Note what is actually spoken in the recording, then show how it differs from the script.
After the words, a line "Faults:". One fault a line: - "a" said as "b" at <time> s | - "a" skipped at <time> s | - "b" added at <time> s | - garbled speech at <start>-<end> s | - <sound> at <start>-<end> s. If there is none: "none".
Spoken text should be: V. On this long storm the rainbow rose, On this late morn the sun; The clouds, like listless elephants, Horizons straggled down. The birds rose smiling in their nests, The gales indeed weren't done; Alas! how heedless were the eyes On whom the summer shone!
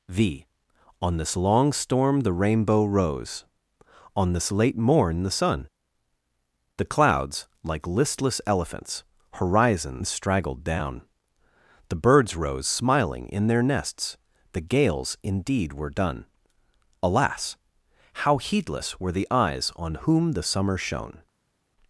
V. On this long storm the rainbow rose, On this late morn the sun; The clouds, like listless elephants, Horizons straggled down. The birds rose smiling in their nests, The gales indeed were done; Alas! how heedless were the eyes On whom the summer shone!
Faults:
- "weren't" said as "were" at 15.7 s